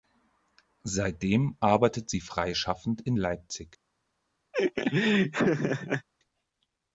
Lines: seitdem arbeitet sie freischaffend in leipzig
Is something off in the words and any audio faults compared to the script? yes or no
yes